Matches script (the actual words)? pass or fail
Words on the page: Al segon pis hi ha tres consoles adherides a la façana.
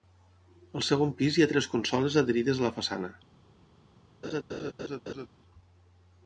pass